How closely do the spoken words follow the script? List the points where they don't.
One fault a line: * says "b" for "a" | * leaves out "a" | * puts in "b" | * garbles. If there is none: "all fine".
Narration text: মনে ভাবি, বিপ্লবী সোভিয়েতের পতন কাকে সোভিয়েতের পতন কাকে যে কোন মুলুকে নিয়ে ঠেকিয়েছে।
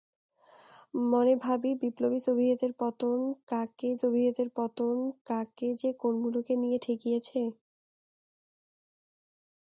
all fine